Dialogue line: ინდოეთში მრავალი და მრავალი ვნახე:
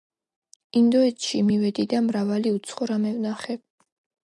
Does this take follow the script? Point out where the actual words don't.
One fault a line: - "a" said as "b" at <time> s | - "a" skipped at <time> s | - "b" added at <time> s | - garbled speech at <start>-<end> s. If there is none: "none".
- "მრავალი" said as "მივედი" at 1.5 s
- "უცხო რამე" added at 2.6 s